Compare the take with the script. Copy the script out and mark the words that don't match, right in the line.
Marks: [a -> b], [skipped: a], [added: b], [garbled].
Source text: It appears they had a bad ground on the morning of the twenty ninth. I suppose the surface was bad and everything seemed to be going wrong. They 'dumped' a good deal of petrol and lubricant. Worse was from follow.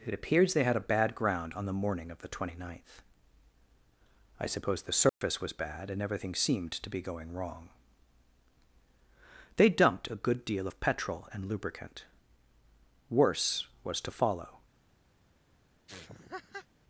It appears they had a bad ground on the morning of the twenty ninth. I suppose the surface was bad and everything seemed to be going wrong. They 'dumped' a good deal of petrol and lubricant. Worse was [from -> to] follow.